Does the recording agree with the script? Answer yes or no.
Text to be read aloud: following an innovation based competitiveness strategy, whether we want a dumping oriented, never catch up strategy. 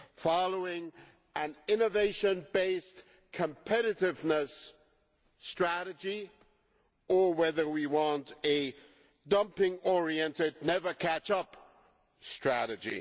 no